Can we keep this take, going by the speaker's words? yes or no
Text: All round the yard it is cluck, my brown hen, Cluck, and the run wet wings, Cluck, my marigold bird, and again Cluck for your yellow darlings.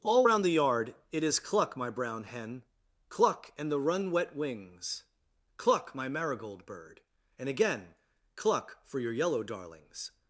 yes